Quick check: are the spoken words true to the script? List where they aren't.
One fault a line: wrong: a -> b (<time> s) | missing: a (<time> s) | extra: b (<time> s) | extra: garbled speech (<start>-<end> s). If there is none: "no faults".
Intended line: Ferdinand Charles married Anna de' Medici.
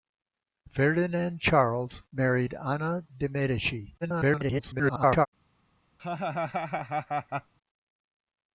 extra: garbled speech (4.0-5.3 s)